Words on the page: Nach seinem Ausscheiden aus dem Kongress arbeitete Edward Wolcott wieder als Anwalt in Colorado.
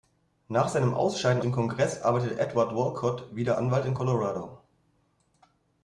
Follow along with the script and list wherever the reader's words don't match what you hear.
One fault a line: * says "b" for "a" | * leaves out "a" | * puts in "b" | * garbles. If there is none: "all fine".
* leaves out "aus"
* leaves out "als"